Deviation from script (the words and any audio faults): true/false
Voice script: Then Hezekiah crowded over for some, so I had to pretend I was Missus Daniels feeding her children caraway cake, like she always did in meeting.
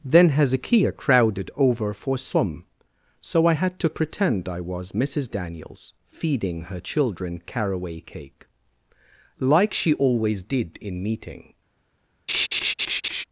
true